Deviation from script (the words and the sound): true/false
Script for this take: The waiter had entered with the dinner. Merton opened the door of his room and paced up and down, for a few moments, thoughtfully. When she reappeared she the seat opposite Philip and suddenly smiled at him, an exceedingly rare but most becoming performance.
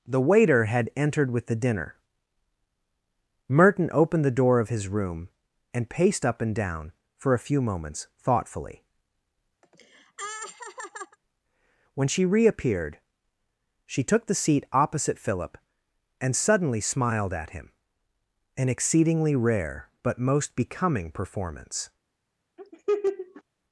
true